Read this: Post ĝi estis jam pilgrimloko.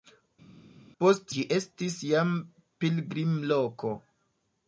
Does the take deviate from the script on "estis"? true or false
false